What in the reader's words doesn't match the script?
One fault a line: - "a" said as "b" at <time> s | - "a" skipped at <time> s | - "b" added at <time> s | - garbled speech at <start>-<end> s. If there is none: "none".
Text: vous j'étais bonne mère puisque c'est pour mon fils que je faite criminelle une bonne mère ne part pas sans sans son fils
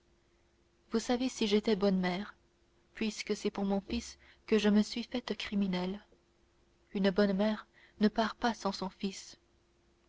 - "savez si" added at 1.0 s
- "me suis" added at 4.7 s
- "sans" skipped at 8.7 s